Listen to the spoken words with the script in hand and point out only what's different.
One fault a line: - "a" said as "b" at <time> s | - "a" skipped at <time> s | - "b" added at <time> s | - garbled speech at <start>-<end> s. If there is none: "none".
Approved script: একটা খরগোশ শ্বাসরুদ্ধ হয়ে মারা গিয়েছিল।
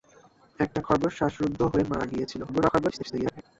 - garbled speech at 2.5-3.4 s